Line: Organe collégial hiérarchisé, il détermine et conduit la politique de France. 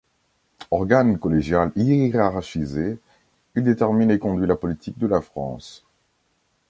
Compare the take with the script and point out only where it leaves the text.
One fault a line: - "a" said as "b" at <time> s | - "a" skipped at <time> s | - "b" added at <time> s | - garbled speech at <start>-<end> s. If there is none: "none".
- "la" added at 5.0 s